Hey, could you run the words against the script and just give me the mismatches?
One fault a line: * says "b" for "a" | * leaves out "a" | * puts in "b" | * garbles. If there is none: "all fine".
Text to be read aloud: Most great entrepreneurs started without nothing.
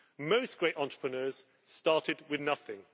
* says "with" for "without"